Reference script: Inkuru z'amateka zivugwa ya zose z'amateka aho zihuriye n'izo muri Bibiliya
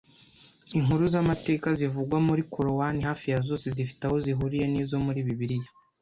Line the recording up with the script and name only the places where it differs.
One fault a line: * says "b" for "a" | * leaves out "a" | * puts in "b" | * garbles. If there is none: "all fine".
* puts in "muri Korowani hafi"
* says "zifite" for "z'amateka"